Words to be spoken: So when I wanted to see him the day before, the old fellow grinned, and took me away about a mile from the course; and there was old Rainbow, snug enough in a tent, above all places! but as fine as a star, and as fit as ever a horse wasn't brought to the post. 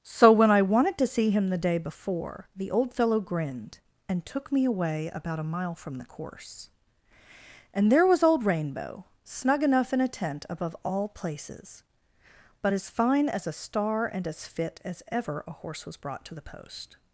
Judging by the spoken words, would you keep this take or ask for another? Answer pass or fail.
fail